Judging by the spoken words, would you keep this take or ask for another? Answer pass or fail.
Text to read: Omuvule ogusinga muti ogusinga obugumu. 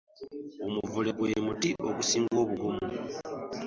fail